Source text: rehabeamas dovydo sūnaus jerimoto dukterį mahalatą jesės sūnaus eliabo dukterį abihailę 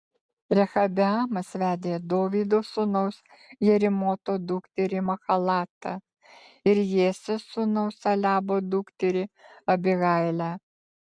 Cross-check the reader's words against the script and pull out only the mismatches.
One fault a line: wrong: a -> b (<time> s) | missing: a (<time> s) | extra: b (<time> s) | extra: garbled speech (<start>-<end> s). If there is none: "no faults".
extra: vedė (1.6 s)
extra: ir (6.7 s)